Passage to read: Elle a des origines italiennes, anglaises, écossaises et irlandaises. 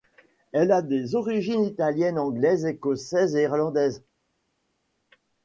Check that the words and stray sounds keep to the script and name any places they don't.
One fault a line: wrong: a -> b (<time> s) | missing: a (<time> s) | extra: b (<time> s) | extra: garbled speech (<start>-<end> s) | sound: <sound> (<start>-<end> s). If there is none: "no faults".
no faults